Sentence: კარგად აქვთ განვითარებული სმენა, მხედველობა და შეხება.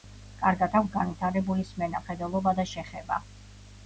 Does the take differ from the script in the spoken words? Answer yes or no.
no